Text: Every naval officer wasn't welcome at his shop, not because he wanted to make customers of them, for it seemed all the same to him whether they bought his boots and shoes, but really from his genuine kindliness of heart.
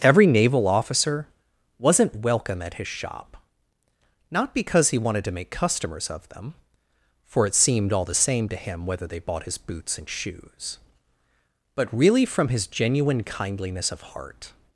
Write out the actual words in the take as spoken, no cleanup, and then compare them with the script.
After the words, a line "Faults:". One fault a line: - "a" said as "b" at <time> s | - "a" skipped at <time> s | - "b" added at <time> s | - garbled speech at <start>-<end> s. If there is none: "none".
Every naval officer wasn't welcome at his shop, not because he wanted to make customers of them, for it seemed all the same to him whether they bought his boots and shoes, but really from his genuine kindliness of heart.
Faults:
none